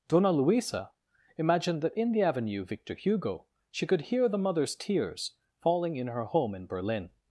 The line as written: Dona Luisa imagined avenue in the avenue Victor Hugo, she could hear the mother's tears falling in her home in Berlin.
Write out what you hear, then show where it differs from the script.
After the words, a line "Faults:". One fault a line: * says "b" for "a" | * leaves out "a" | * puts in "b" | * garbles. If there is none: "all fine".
Dona Luisa imagined that in the avenue Victor Hugo, she could hear the mother's tears falling in her home in Berlin.
Faults:
* says "that" for "avenue"